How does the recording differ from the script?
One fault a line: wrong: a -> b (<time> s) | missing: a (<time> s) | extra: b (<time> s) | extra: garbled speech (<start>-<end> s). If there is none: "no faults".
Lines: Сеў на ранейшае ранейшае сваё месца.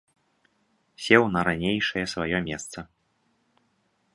missing: ранейшае (2.0 s)